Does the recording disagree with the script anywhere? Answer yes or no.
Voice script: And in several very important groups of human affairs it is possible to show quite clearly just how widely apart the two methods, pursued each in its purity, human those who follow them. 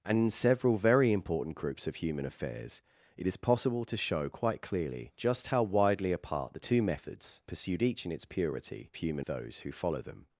no